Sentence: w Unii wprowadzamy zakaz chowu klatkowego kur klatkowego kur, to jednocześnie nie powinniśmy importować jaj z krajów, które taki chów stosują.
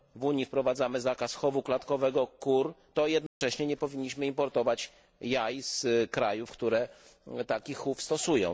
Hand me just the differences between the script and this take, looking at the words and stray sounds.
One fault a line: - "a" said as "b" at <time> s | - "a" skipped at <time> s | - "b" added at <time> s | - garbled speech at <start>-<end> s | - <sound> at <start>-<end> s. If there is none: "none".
- "klatkowego kur" skipped at 2.7 s
- dropout at 3.3-3.4 s